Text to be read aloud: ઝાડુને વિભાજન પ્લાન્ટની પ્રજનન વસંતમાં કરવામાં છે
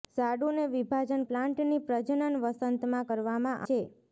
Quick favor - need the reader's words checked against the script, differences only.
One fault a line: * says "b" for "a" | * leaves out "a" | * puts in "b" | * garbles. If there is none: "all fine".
all fine